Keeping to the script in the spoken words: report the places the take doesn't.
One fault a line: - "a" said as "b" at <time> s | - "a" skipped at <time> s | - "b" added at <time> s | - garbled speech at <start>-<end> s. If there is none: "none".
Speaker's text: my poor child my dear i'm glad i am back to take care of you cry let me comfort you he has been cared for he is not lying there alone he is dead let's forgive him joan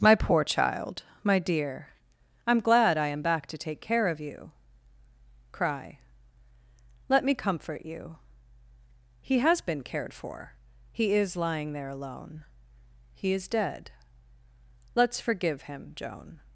- "not" skipped at 11.4 s